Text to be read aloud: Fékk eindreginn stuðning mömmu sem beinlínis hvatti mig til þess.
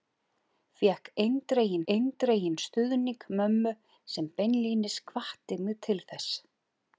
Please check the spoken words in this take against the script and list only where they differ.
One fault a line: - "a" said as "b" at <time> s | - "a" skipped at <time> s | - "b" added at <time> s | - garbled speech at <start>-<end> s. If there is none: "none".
- "eindreginn" added at 1.9 s